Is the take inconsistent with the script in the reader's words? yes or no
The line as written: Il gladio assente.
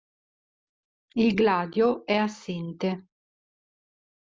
yes